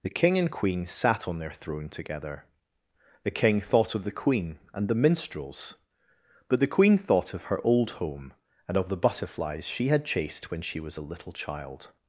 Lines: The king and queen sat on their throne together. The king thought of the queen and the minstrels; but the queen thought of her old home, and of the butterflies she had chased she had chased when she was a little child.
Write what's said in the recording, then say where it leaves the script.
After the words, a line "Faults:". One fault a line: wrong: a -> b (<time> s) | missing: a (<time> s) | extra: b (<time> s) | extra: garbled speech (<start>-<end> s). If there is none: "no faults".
The king and queen sat on their throne together. The king thought of the queen and the minstrels; but the queen thought of her old home, and of the butterflies she had chased when she was a little child.
Faults:
missing: she had chased (10.5 s)